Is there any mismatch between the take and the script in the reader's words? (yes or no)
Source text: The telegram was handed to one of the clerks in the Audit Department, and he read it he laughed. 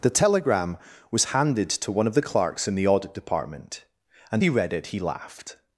no